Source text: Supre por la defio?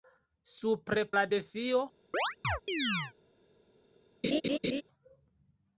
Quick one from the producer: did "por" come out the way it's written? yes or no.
no